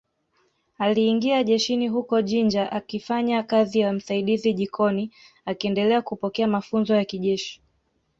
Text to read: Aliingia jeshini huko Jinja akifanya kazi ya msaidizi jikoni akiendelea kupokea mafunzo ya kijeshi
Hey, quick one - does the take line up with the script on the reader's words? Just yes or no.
yes